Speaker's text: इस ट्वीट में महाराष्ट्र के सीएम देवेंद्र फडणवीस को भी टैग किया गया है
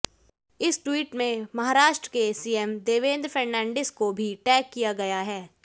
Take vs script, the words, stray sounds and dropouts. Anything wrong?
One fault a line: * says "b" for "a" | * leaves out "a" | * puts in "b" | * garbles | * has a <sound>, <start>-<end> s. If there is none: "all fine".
all fine